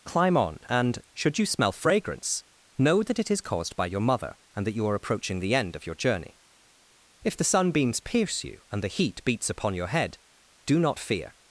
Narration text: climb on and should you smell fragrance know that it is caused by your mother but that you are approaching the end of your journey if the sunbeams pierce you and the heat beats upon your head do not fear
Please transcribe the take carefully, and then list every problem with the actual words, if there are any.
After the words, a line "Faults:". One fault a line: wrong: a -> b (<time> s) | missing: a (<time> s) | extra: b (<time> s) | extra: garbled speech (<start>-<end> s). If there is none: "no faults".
climb on and should you smell fragrance know that it is caused by your mother and that you are approaching the end of your journey if the sunbeams pierce you and the heat beats upon your head do not fear
Faults:
wrong: but -> and (4.5 s)